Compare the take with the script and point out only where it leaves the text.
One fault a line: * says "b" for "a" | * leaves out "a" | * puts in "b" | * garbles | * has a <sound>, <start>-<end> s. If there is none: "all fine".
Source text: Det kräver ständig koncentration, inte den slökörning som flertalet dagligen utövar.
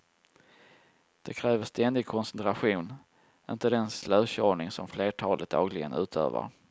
all fine